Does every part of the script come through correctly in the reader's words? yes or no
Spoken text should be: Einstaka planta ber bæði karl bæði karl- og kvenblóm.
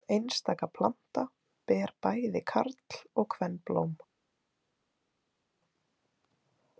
no